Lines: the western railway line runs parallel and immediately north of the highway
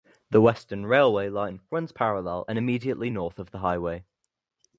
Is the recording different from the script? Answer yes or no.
no